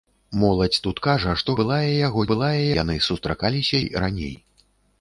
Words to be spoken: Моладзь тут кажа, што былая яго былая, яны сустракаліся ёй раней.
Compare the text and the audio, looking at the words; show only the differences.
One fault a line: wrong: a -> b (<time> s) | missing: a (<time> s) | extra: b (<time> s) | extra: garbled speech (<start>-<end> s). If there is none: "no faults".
no faults